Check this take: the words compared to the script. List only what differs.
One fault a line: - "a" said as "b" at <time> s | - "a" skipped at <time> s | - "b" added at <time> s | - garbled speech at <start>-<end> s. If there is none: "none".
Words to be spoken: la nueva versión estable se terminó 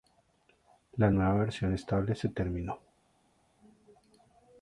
none